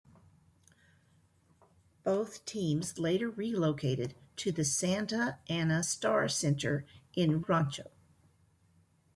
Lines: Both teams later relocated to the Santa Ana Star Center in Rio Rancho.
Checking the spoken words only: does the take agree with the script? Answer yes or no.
no